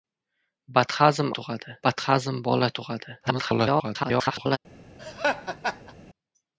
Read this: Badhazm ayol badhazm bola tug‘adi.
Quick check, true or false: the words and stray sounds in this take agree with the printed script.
false